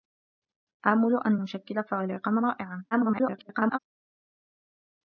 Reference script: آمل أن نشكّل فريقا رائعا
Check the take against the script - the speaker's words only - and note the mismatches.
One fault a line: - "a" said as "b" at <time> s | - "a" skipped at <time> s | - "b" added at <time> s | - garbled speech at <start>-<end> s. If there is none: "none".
- garbled speech at 2.9-3.8 s